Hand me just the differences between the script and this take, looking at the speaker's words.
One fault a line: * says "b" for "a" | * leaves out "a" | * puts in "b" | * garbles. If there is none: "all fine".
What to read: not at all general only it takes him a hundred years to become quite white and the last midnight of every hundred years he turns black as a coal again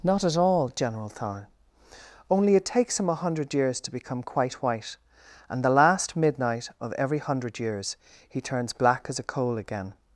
* puts in "thorne"